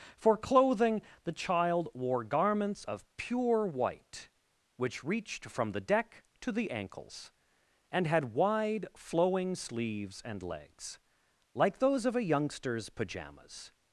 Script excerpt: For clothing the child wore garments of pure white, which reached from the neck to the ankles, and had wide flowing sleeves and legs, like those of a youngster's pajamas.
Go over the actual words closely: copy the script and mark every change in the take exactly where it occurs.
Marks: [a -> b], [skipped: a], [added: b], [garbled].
For clothing the child wore garments of pure white, which reached from the [neck -> deck] to the ankles, and had wide flowing sleeves and legs, like those of a youngster's pajamas.